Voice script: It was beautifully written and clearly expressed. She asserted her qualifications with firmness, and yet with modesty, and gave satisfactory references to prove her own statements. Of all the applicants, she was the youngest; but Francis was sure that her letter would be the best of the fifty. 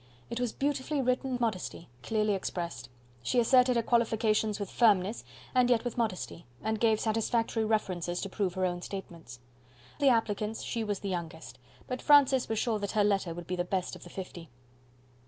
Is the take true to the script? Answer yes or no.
no